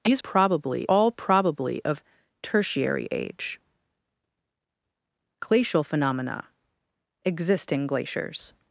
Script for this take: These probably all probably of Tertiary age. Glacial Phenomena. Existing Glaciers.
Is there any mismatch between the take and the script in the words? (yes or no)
no